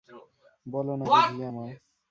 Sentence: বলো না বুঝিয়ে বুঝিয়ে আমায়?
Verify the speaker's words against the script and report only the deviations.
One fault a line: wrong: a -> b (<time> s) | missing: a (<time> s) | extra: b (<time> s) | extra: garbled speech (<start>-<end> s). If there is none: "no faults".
missing: বুঝিয়ে (1.5 s)